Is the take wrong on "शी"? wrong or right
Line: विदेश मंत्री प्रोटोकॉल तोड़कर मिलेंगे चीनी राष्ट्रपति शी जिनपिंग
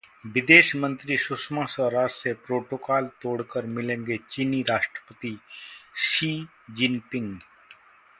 right